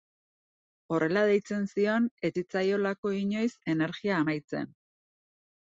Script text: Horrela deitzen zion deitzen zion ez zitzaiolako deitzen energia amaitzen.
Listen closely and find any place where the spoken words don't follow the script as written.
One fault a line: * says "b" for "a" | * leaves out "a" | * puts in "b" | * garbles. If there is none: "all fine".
* leaves out "deitzen zion"
* says "inoiz" for "deitzen"